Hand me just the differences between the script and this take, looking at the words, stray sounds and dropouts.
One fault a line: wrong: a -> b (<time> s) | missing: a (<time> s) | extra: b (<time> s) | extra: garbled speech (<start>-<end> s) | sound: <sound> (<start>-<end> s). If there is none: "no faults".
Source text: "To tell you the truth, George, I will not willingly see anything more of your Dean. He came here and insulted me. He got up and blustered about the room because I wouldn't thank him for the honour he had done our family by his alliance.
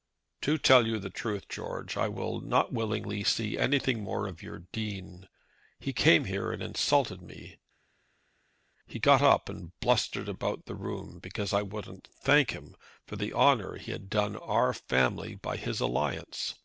no faults